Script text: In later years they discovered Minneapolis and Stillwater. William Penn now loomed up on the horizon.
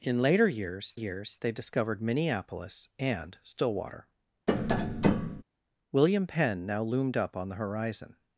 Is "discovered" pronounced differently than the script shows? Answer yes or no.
no